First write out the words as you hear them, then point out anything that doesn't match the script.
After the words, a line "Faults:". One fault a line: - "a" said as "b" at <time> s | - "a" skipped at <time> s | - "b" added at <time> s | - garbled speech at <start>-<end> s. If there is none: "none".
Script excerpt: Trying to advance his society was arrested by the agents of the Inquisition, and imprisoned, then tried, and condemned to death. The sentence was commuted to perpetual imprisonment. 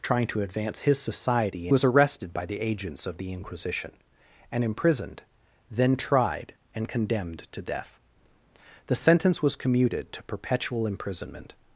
Trying to advance his society was arrested by the agents of the Inquisition, and imprisoned, then tried, and condemned to death. The sentence was commuted to perpetual imprisonment.
Faults:
none